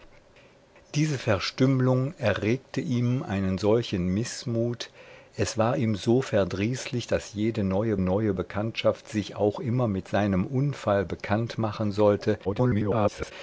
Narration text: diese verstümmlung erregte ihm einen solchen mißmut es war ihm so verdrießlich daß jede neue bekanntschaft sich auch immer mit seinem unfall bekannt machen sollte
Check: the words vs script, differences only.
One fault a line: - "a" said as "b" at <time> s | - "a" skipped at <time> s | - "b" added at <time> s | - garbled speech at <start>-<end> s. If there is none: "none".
- "neue" added at 8.0 s
- garbled speech at 12.4-13.3 s